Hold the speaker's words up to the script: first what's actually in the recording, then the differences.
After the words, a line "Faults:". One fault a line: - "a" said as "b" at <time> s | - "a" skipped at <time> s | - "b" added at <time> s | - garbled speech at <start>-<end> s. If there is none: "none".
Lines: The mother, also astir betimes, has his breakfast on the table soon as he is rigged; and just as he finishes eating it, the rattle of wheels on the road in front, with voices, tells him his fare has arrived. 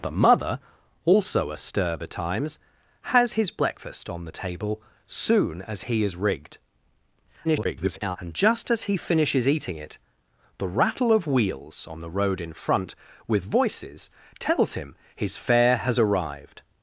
The mother, also astir betimes, has his breakfast on the table soon as he is rigged; [garbled] and just as he finishes eating it, the rattle of wheels on the road in front, with voices, tells him his fare has arrived.
Faults:
- garbled speech at 7.4-8.2 s